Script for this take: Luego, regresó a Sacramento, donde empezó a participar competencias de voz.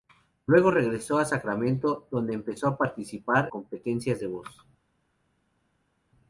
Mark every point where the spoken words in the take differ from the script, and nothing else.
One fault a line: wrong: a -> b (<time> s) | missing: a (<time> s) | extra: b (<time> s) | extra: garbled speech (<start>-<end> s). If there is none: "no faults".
no faults